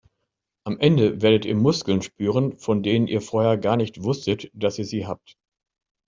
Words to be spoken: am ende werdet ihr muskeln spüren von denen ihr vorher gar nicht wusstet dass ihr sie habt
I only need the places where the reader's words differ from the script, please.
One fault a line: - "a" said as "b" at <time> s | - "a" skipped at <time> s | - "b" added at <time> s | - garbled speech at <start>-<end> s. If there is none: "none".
none